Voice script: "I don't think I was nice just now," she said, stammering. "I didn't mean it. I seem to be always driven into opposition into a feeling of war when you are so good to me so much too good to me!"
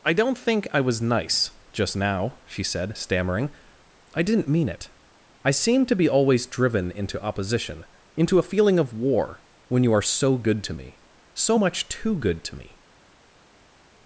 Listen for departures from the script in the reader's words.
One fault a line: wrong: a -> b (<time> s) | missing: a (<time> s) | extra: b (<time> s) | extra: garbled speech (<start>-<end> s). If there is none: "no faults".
no faults